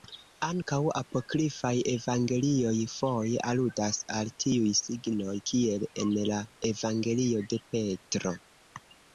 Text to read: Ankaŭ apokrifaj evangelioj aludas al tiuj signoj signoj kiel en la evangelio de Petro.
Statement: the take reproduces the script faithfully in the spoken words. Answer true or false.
false